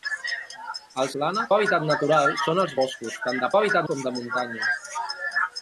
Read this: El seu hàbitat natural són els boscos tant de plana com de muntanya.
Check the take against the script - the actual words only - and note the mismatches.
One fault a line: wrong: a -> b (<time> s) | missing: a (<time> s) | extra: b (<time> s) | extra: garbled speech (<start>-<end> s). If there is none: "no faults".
wrong: seu -> plana (1.2 s)
wrong: plana -> hàbitat (3.6 s)